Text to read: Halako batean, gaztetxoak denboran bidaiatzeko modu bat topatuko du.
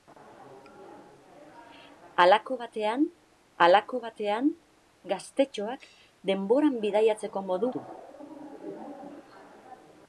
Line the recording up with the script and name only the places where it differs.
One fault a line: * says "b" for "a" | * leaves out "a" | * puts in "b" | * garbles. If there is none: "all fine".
* puts in "halako batean"
* leaves out "bat topatuko"